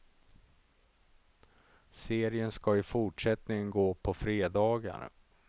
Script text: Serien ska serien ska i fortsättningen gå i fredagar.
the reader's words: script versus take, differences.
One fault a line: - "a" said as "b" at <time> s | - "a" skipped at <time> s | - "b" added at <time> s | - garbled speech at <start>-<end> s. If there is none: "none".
- "serien ska" skipped at 2.8 s
- "i" said as "på" at 3.9 s